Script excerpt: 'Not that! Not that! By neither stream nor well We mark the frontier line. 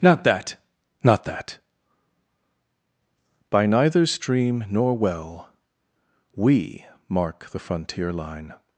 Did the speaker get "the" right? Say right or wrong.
right